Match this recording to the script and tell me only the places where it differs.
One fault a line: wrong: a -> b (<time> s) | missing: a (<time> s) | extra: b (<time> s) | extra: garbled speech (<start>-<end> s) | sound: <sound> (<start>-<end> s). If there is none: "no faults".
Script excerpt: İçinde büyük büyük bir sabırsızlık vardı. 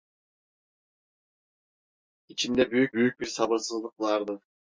no faults